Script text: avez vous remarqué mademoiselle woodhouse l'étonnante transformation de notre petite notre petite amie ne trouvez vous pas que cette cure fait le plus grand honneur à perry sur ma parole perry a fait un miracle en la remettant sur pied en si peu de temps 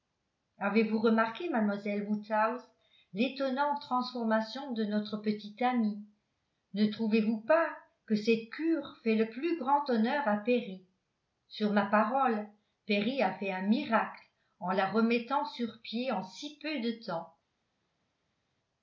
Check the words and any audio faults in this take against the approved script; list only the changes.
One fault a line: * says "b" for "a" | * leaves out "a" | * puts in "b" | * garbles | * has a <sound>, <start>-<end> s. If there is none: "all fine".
* leaves out "notre petite"